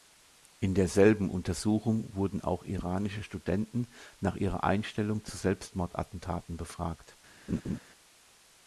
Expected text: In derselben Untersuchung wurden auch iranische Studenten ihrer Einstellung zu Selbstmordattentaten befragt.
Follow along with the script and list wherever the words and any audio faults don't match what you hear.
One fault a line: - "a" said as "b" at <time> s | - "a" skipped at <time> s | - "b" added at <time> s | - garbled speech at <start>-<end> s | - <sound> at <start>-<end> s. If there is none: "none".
- "nach" added at 4.2 s
- laugh at 7.5-7.8 s